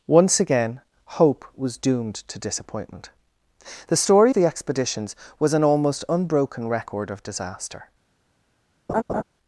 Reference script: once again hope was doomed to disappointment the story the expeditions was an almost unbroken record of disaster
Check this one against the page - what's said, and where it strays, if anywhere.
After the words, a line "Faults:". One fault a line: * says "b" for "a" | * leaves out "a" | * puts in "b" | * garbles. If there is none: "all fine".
once again hope was doomed to disappointment the story the expeditions was an almost unbroken record of disaster
Faults:
all fine